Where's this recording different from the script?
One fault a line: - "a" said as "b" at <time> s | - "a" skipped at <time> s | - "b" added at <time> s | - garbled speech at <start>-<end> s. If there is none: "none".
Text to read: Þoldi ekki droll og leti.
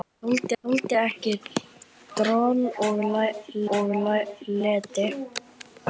- "þoldi" added at 0.6 s
- "og" added at 3.8 s